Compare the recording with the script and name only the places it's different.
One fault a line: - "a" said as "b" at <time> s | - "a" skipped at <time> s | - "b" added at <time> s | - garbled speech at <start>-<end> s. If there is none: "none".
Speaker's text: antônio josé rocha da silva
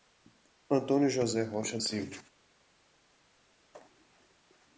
- "da" skipped at 1.8 s